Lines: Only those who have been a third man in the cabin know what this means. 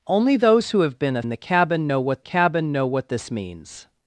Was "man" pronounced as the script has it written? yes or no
no